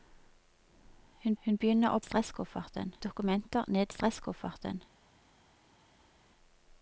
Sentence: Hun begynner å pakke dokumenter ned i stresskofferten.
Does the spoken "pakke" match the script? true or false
false